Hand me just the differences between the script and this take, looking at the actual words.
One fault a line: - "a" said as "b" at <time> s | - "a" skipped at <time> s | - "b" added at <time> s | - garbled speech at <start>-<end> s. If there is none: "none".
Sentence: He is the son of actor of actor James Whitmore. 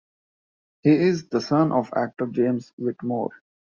- "of actor" skipped at 2.3 s